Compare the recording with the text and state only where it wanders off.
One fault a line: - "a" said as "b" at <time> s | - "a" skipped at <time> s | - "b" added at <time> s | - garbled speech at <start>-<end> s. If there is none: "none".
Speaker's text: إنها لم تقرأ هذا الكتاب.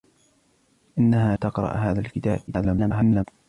- "لم" skipped at 1.4 s
- garbled speech at 2.5-3.2 s